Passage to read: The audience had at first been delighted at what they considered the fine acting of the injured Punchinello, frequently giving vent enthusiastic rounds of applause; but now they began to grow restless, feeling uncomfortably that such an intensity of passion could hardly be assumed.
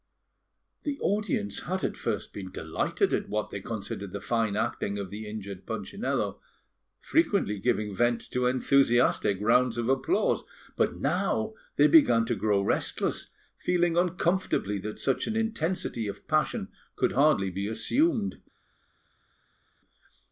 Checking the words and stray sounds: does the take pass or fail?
fail